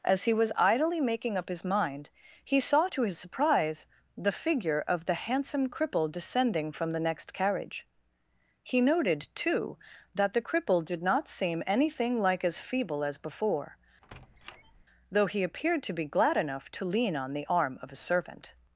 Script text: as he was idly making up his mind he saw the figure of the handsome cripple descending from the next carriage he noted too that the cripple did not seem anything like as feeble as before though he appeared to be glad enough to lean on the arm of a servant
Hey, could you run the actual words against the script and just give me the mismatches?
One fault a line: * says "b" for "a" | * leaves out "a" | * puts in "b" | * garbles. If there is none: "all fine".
* puts in "to his surprise"